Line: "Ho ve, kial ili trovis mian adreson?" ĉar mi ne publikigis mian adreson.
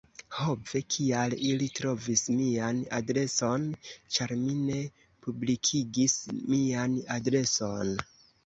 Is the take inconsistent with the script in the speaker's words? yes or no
no